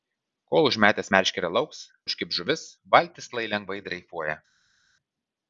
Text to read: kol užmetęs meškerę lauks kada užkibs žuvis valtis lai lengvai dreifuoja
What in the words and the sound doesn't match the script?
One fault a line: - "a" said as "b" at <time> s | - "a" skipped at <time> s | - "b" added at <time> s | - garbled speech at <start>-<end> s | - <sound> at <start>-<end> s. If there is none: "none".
- "kada" skipped at 1.8 s